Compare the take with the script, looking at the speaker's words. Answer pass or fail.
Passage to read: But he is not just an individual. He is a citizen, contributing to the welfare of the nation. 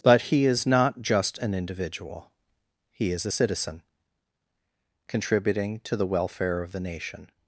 pass